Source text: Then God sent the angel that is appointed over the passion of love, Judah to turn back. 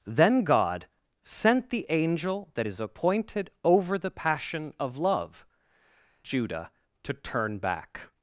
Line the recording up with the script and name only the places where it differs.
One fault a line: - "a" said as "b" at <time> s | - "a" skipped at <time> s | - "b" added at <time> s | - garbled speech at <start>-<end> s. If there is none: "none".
none